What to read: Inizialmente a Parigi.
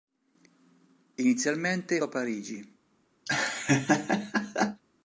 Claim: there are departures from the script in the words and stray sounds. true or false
true